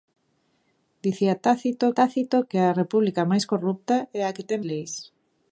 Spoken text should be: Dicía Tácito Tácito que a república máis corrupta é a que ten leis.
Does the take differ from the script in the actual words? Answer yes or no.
no